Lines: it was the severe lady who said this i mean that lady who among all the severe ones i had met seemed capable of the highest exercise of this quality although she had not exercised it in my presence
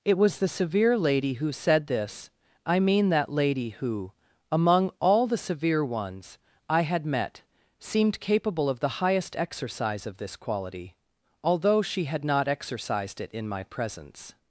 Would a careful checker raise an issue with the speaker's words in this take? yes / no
no